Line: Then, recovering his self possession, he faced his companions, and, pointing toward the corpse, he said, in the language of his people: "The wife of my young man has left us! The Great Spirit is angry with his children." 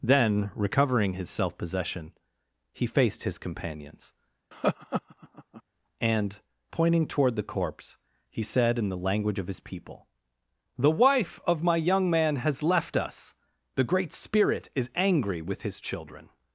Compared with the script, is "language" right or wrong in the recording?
right